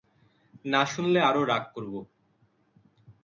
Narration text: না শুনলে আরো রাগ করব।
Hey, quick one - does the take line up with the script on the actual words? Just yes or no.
yes